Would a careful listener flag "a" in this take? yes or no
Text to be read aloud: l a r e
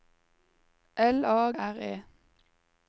no